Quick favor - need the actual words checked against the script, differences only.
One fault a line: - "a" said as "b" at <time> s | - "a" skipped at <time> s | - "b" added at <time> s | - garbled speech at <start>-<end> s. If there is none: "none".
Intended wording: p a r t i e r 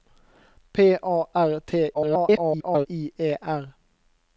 - garbled speech at 1.9-2.9 s